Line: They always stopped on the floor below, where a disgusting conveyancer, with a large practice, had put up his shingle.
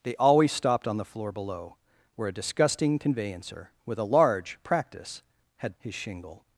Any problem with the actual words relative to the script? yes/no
yes